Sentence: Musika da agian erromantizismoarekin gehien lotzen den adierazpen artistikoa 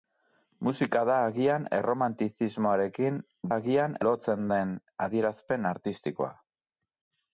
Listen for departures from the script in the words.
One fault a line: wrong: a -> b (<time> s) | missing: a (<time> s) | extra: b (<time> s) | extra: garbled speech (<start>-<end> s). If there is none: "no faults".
wrong: gehien -> agian (3.5 s)